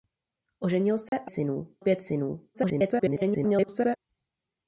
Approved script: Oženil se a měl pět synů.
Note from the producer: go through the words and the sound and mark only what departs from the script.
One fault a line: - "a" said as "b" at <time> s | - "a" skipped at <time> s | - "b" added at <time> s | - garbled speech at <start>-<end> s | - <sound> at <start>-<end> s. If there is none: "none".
- dropout at 1.1-1.1 s
- "měl" said as "synů" at 1.3 s
- garbled speech at 2.5-4.0 s